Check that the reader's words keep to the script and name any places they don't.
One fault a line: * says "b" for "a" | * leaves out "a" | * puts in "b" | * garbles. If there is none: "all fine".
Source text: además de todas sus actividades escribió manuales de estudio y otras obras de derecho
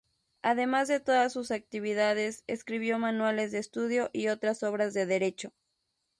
all fine